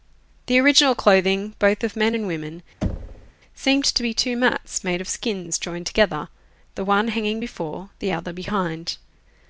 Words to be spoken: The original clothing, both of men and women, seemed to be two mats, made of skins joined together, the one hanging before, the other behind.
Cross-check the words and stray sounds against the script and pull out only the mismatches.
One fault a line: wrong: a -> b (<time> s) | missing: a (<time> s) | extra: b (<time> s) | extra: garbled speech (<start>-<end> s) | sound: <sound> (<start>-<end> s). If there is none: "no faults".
sound: thud (2.8-3.3 s)